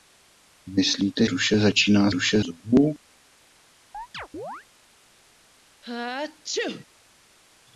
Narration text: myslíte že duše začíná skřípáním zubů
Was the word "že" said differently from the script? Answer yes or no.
yes